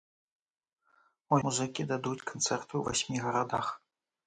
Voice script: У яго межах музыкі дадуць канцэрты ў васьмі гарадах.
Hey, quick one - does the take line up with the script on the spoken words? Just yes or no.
no